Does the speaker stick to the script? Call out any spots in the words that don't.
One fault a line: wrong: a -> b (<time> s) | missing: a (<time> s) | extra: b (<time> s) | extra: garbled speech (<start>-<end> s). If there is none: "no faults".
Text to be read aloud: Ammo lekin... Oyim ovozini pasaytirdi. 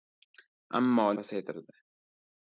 missing: lekin Oyim ovozini (1.1 s)